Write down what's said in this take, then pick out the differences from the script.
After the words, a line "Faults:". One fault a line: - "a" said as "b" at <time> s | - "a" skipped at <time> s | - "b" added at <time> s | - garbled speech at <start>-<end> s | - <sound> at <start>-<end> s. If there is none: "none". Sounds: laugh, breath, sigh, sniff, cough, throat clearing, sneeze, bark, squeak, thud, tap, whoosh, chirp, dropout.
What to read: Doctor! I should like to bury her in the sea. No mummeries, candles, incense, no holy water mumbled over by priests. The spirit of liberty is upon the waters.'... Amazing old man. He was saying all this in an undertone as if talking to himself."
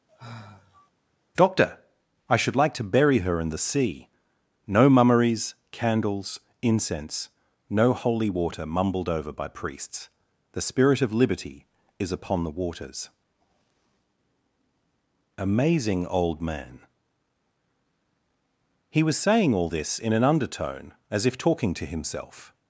Doctor! I should like to bury her in the sea. No mummeries, candles, incense, no holy water mumbled over by priests. The spirit of liberty is upon the waters.'... Amazing old man. He was saying all this in an undertone as if talking to himself."
Faults:
- sigh at 0.1-0.9 s